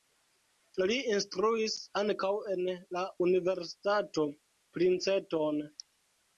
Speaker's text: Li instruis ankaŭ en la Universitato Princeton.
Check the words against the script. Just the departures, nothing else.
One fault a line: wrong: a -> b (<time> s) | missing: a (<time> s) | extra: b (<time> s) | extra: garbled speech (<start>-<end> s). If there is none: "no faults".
no faults